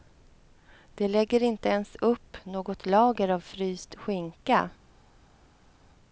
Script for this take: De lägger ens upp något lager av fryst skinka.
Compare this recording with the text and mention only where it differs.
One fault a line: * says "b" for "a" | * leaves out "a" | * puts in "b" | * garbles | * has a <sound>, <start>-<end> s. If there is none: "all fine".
* puts in "inte"